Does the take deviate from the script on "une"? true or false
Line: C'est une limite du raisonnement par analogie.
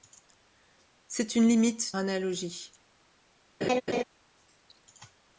false